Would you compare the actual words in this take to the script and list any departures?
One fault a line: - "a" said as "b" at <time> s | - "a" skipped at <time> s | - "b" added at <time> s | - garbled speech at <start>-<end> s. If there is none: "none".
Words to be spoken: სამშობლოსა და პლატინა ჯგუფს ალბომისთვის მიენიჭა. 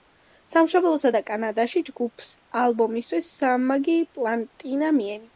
- "პლატინა" said as "კანადაში" at 1.3 s
- "სამმაგი პლატინა" added at 3.4 s